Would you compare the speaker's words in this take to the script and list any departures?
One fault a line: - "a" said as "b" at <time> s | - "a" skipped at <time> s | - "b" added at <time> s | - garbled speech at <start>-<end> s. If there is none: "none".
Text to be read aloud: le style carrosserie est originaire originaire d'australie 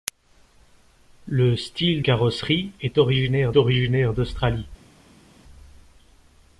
none